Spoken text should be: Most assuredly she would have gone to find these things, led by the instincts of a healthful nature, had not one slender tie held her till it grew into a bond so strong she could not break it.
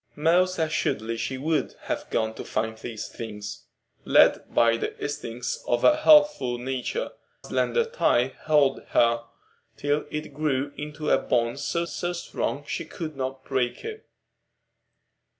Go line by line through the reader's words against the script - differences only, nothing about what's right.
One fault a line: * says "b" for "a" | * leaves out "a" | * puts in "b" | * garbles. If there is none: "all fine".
* leaves out "had not one"
* puts in "so"